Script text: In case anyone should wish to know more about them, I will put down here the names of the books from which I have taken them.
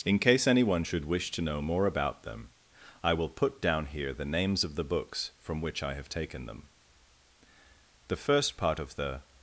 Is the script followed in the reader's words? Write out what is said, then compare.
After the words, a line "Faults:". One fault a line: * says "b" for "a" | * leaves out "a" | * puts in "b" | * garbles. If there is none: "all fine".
In case anyone should wish to know more about them, I will put down here the names of the books from which I have taken them. The first part of the
Faults:
* puts in "The first part of the"